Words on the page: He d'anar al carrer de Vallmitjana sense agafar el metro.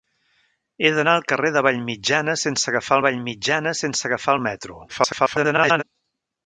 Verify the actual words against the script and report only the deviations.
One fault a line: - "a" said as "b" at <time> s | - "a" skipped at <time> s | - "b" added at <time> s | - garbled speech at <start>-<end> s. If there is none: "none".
- "Vallmitjana sense agafar" added at 3.1 s
- garbled speech at 4.9-5.8 s